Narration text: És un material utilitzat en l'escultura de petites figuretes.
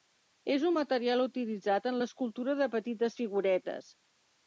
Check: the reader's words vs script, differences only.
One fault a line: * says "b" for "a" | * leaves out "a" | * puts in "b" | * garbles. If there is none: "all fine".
all fine